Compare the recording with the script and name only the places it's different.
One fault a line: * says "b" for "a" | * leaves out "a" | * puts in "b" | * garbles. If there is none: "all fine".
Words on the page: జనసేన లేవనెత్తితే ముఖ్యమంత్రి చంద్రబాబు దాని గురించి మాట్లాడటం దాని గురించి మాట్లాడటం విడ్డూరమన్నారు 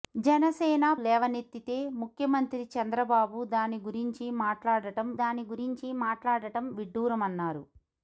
all fine